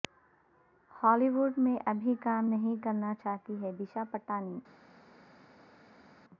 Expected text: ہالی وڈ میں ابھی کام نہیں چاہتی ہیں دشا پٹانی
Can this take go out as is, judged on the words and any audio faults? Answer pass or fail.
fail